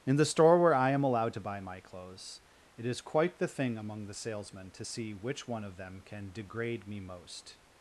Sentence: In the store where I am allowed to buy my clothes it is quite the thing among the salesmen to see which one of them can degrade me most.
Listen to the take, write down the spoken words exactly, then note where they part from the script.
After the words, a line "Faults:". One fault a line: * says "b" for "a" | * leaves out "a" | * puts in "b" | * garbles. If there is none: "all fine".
In the store where I am allowed to buy my clothes it is quite the thing among the salesmen to see which one of them can degrade me most.
Faults:
all fine